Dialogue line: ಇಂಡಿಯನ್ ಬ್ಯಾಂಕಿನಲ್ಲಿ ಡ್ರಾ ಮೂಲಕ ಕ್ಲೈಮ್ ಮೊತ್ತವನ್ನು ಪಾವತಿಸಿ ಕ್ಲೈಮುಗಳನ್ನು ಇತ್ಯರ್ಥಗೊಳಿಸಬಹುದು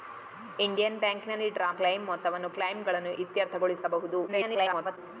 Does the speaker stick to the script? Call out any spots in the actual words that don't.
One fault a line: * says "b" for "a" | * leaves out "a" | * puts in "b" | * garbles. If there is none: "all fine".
* leaves out "ಮೂಲಕ"
* leaves out "ಪಾವತಿಸಿ"
* garbles